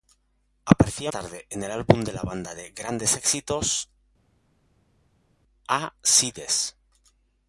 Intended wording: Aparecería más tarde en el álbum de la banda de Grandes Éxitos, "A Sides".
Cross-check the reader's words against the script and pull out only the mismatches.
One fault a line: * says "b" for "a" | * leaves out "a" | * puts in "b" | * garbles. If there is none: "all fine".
* leaves out "más"